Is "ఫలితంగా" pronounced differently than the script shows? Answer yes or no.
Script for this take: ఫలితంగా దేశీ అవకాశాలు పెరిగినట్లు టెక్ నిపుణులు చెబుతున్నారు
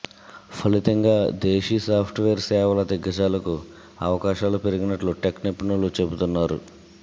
no